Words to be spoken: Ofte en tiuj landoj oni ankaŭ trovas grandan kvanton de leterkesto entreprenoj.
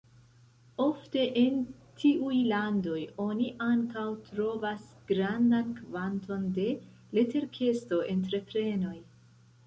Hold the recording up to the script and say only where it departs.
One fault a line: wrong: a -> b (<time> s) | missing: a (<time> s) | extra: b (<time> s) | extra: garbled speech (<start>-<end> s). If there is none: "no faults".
no faults